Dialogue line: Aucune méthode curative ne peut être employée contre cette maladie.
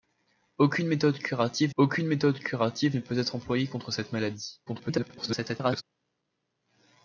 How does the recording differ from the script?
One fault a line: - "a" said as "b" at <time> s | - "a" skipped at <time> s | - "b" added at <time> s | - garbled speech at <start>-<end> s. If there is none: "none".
- "aucune méthode curative" added at 1.8 s
- garbled speech at 4.7-5.8 s